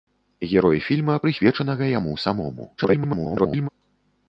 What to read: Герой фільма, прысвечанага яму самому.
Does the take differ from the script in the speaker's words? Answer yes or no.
yes